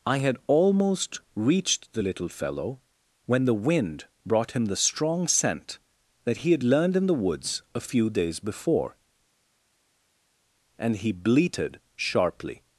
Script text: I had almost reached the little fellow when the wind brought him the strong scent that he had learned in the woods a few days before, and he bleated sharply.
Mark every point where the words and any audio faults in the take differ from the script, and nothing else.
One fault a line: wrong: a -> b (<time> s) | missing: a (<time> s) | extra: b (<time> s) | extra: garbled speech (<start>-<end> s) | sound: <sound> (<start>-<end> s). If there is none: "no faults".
no faults